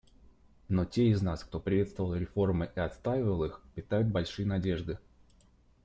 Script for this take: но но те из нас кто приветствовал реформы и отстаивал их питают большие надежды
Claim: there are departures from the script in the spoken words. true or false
true